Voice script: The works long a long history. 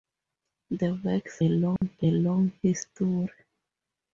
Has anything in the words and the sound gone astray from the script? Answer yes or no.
yes